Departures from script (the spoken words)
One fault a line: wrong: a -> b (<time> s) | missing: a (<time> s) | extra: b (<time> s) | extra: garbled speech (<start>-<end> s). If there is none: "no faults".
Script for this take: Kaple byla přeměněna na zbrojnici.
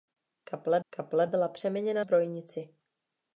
extra: kaple (0.9 s)
missing: na (2.0 s)